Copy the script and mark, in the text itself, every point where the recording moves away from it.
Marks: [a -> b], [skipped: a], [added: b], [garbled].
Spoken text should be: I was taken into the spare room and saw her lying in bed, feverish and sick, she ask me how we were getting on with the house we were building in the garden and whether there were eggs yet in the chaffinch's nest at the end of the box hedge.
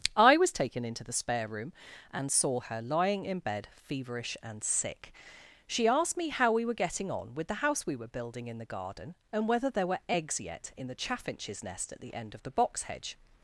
I was taken into the spare room and saw her lying in bed, feverish and sick, she [ask -> asked] me how we were getting on with the house we were building in the garden and whether there were eggs yet in the chaffinch's nest at the end of the box hedge.